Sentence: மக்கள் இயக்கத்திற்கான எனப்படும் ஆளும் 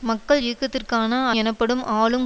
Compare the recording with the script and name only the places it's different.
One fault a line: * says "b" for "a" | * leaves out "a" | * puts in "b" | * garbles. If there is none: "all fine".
all fine